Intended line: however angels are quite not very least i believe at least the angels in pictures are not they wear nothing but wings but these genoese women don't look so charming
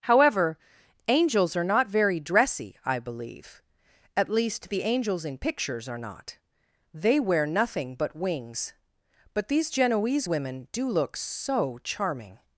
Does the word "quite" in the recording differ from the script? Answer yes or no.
yes